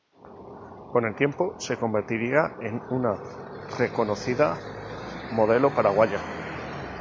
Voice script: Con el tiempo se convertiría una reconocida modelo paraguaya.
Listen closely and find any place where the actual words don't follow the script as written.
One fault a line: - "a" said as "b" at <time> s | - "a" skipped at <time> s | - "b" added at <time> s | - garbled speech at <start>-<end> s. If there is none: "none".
- "en" added at 2.6 s